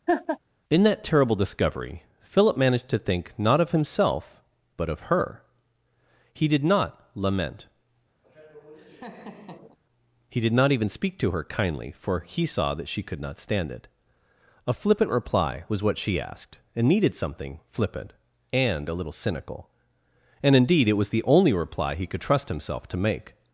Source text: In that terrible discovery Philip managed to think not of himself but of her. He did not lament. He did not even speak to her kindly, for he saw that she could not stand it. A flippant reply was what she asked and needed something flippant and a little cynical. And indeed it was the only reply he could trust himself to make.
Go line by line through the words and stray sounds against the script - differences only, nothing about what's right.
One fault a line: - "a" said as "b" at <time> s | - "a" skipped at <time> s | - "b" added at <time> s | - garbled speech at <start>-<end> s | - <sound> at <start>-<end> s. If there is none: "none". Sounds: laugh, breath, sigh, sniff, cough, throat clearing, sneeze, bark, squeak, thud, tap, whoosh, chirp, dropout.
- laugh at 0.1-0.4 s
- laugh at 8.2-9.8 s